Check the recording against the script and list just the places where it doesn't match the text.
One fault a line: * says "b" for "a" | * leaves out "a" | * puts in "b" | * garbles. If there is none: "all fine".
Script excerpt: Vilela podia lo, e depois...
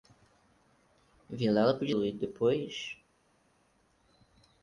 all fine